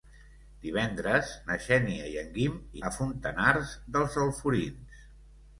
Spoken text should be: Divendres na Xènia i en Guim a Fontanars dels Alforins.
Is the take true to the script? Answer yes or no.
yes